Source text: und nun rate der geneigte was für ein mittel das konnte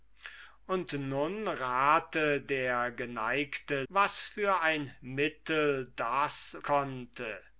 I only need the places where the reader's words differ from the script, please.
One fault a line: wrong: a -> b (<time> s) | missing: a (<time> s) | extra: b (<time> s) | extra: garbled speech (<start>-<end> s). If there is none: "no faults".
no faults